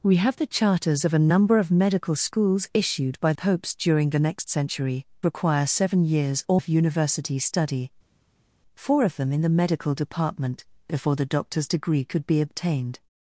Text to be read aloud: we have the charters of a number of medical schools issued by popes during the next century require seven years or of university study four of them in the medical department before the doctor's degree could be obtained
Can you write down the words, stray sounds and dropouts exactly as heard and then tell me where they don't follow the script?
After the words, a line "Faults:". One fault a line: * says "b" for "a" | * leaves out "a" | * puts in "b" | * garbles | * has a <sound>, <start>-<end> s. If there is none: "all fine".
we have the charters of a number of medical schools issued by popes during the next century require seven years or of university study four of them in the medical department before the doctor's degree could be obtained
Faults:
all fine